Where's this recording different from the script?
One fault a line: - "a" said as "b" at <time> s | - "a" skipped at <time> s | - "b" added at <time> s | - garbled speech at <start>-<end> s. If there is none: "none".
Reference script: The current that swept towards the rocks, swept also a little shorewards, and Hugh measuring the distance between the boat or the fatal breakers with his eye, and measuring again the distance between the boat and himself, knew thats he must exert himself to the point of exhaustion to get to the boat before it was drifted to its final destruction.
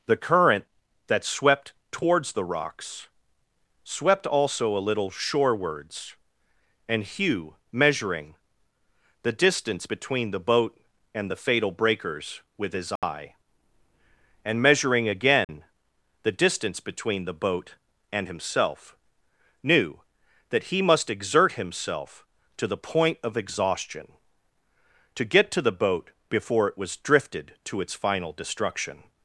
- "or" said as "and" at 11.1 s
- "thats" said as "that" at 20.5 s